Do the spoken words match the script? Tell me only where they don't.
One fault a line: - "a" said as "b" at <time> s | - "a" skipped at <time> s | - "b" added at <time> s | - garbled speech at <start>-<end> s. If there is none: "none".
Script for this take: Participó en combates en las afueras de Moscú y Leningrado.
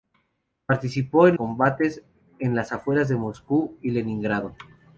none